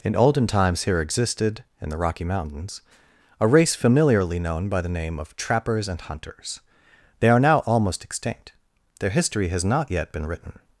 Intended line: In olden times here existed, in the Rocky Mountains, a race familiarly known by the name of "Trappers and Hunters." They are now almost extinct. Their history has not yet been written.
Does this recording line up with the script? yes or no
yes